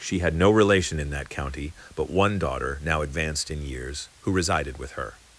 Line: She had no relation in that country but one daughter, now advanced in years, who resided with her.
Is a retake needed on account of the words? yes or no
yes